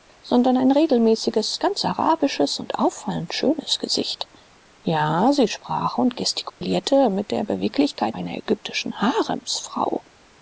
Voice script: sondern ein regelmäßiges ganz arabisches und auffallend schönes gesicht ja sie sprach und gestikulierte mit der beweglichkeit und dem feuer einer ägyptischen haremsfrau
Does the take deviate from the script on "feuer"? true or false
true